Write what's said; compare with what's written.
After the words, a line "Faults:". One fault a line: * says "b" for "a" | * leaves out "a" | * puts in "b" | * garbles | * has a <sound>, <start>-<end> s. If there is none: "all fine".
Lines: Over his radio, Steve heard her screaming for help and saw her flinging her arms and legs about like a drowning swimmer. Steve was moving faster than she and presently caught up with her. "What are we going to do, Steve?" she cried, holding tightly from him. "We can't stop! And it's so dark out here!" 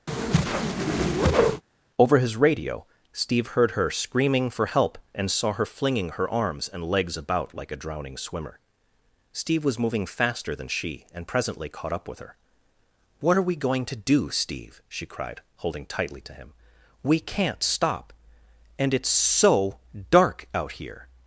Over his radio, Steve heard her screaming for help and saw her flinging her arms and legs about like a drowning swimmer. Steve was moving faster than she and presently caught up with her. "What are we going to do, Steve?" she cried, holding tightly to him. "We can't stop! And it's so dark out here!"
Faults:
* has a whoosh, 0.1-1.6 s
* says "to" for "from"